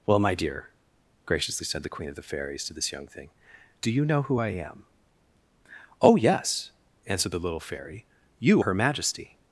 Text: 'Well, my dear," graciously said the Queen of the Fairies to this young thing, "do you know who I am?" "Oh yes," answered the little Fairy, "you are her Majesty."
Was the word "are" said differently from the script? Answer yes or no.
yes